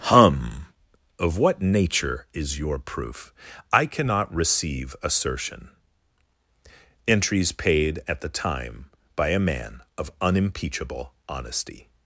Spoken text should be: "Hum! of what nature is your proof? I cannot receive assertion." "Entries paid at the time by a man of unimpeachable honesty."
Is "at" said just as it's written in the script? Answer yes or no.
yes